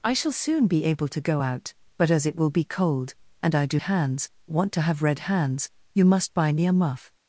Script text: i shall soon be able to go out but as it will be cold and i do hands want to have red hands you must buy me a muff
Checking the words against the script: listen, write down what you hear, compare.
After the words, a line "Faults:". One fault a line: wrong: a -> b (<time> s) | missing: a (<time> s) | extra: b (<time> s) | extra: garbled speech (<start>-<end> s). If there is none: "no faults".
i shall soon be able to go out but as it will be cold and i do hands want to have red hands you must buy me a muff
Faults:
no faults